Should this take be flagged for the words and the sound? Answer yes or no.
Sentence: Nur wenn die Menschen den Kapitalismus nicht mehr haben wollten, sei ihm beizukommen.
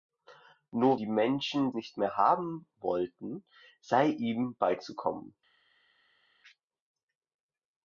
yes